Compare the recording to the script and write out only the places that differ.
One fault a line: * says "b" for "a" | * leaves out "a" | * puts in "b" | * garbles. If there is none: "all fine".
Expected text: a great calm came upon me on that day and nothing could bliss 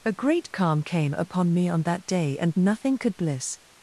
all fine